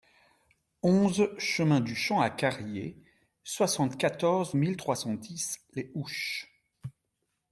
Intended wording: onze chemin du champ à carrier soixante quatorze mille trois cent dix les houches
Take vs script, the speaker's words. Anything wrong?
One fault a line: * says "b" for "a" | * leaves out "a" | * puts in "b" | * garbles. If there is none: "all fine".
all fine